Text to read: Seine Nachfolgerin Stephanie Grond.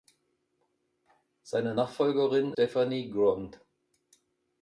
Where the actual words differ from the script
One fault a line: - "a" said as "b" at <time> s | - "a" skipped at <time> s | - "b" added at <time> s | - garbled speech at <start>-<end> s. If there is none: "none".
none